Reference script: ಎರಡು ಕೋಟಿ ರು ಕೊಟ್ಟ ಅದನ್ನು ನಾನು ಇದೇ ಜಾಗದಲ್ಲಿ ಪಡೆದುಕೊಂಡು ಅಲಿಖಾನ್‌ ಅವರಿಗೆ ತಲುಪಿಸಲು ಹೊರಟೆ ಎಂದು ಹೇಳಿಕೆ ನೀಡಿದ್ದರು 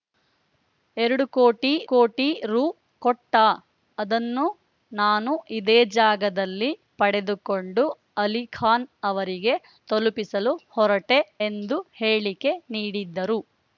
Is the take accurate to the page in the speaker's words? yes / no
no